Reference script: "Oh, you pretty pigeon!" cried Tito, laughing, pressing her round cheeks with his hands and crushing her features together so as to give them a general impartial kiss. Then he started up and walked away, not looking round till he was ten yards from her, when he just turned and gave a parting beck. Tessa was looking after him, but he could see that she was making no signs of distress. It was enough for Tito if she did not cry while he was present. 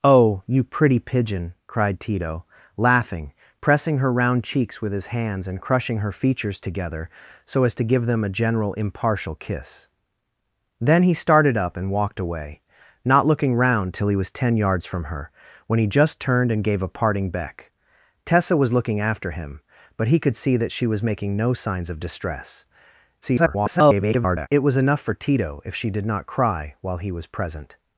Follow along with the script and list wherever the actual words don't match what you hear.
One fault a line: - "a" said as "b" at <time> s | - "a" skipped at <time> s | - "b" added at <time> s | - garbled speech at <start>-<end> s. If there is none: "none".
- garbled speech at 23.2-24.5 s